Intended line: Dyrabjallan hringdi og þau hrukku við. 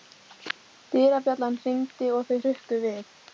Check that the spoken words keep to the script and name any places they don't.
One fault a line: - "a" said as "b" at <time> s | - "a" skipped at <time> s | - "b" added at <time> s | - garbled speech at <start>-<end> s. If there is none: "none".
none